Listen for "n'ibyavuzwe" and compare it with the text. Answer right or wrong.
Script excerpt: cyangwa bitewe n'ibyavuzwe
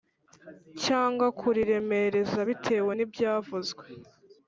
right